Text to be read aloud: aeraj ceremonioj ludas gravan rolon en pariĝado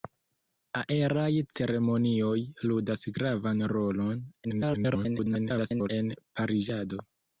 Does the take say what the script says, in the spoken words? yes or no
no